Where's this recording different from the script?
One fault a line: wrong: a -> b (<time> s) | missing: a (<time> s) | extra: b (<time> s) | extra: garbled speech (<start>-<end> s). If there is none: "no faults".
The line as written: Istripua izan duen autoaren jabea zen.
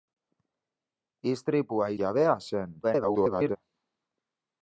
missing: izan duen autoaren (1.9 s)
extra: garbled speech (2.8-3.6 s)